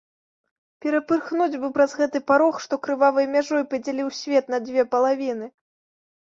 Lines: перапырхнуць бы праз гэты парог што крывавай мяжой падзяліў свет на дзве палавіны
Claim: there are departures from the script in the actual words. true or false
false